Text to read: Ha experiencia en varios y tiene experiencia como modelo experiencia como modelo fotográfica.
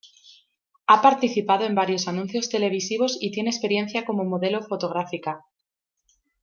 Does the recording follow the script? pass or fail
fail